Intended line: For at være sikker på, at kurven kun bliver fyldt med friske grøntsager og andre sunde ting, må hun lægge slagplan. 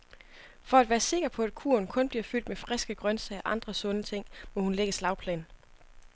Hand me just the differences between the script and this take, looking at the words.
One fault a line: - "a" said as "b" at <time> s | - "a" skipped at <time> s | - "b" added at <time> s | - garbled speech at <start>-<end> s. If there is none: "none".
none